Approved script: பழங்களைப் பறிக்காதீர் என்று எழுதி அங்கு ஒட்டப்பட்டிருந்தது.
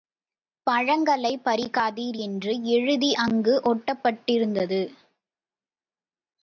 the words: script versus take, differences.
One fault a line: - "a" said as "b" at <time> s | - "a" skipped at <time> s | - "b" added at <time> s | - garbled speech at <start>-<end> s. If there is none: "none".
none